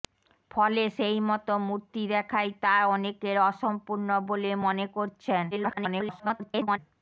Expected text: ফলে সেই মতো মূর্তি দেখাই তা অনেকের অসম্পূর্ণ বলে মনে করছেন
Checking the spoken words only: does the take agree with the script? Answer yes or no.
no